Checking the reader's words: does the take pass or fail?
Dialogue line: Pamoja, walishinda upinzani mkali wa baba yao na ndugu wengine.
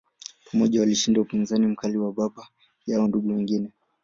fail